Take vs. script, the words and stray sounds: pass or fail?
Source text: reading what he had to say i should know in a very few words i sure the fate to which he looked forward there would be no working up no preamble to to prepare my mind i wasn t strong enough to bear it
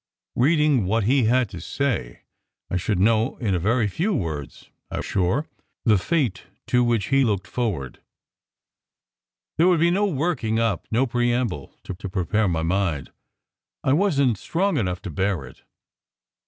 pass